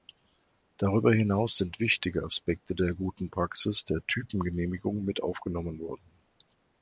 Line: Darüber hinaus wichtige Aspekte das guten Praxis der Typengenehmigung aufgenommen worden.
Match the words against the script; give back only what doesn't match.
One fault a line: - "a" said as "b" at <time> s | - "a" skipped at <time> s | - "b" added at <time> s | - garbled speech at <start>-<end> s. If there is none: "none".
- "sind" added at 1.6 s
- "das" said as "der" at 2.7 s
- "mit" added at 5.0 s